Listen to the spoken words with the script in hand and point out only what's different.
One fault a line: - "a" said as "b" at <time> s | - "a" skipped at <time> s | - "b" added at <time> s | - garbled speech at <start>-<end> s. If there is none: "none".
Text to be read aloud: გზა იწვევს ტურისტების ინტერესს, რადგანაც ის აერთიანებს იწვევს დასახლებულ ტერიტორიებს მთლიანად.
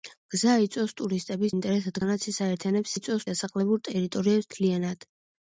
none